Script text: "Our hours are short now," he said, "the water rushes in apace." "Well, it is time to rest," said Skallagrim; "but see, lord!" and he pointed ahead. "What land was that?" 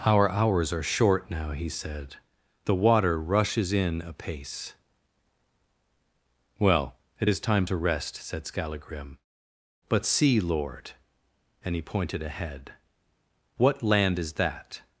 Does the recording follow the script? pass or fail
fail